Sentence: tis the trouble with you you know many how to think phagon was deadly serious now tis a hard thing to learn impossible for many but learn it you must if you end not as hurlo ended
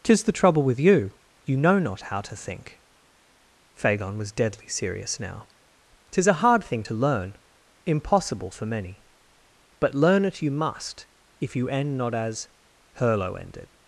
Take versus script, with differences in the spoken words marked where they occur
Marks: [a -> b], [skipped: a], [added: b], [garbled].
tis the trouble with you you know [many -> not] how to think phagon was deadly serious now tis a hard thing to learn impossible for many but learn it you must if you end not as hurlo ended